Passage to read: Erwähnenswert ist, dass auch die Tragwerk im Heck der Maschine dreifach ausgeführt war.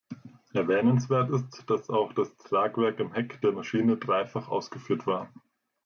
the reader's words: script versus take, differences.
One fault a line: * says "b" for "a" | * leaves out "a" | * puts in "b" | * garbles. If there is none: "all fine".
* says "das" for "die"